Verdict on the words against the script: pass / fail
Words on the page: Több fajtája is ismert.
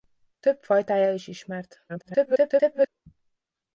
fail